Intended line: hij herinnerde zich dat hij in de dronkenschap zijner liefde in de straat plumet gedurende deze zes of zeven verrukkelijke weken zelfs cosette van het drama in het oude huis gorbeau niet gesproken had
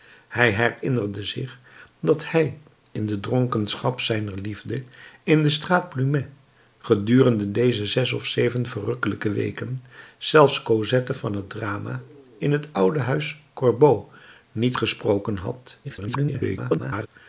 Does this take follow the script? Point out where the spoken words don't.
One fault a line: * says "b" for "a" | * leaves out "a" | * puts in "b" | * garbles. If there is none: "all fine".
* garbles